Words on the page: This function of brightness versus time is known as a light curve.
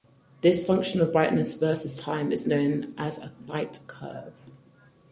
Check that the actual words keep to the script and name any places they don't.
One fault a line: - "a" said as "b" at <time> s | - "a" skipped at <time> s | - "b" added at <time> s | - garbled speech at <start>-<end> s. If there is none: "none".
none